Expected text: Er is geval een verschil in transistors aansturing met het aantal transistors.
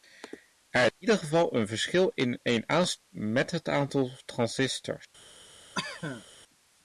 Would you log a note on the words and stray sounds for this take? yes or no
yes